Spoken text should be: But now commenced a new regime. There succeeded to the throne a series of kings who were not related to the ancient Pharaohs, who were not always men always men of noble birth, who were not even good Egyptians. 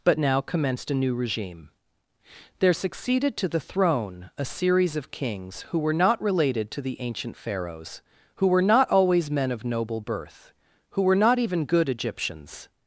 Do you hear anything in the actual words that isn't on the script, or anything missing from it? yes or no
yes